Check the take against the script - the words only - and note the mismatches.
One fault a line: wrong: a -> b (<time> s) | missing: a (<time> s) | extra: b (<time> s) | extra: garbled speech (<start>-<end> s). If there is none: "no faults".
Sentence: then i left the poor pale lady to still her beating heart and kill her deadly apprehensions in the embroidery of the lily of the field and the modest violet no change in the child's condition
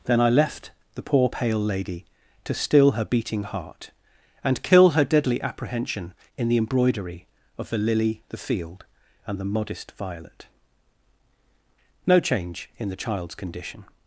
wrong: apprehensions -> apprehension (5.4 s)
missing: of (8.2 s)